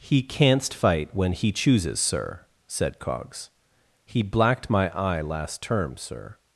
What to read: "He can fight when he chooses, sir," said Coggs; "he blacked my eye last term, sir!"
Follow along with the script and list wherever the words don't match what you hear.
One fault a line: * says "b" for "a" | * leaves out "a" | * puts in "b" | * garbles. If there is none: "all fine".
* says "canst" for "can"